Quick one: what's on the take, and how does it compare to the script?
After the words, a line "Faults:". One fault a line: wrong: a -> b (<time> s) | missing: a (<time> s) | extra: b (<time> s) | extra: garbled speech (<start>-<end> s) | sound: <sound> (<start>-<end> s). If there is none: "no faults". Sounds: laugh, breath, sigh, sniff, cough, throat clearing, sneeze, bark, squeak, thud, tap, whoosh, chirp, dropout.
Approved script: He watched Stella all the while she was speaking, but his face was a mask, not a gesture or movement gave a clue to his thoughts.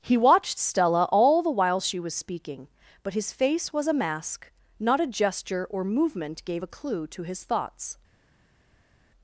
He watched Stella all the while she was speaking, but his face was a mask, not a gesture or movement gave a clue to his thoughts.
Faults:
no faults